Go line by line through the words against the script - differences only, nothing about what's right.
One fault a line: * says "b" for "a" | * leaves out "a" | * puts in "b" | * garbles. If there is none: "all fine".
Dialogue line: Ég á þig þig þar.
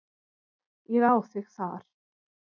* leaves out "þig"